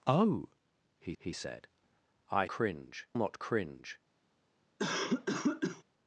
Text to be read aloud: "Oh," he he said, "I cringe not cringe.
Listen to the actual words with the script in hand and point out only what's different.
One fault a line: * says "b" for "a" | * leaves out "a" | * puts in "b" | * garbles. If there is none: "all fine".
all fine